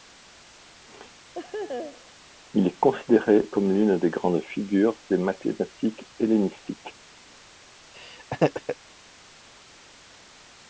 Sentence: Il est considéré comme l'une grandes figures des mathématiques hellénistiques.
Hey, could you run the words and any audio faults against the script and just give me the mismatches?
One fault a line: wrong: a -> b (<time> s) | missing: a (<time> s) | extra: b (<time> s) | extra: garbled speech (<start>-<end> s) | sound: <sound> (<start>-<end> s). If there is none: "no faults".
sound: laugh (1.3-2.2 s)
extra: des (4.0 s)
sound: laugh (7.9-8.8 s)